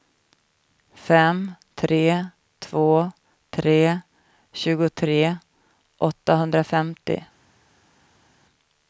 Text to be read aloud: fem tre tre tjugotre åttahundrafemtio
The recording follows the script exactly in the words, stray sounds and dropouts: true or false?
false